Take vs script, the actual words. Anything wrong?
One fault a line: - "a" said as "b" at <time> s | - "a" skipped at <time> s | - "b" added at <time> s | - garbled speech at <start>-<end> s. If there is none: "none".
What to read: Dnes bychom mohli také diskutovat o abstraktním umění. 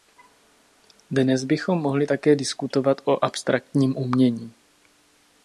none